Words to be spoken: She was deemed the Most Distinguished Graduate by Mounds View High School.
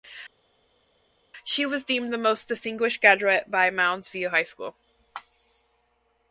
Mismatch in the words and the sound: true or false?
false